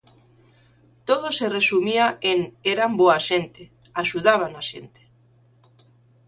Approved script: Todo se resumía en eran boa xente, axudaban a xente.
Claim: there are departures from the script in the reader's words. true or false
false